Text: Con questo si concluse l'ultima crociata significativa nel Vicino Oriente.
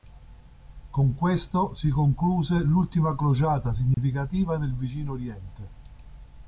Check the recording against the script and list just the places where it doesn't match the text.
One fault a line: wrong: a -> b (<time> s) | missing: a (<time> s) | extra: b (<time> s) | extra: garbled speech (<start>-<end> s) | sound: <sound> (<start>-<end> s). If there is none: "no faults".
sound: dropout (3.9-4.0 s)